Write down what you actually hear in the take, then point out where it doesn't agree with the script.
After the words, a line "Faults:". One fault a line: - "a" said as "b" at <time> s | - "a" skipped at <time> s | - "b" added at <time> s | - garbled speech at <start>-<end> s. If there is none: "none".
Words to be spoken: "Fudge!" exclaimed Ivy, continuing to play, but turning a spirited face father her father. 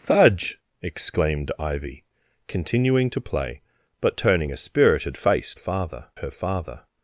"Fudge!" exclaimed Ivy, continuing to play, but turning a spirited face father her father.
Faults:
none